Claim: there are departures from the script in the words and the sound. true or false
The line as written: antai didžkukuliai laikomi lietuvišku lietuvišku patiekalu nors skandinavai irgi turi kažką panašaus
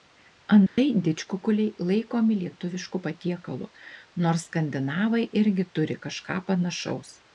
true